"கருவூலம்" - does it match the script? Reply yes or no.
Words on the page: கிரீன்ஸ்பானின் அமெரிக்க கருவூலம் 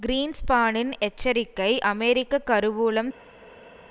yes